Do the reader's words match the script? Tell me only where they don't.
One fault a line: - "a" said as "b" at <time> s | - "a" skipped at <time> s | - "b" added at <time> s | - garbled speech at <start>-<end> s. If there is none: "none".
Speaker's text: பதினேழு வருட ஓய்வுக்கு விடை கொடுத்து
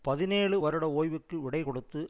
none